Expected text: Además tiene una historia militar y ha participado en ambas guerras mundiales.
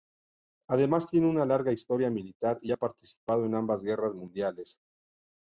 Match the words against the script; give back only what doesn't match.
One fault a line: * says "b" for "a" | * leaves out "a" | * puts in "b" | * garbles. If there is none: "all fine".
* puts in "larga"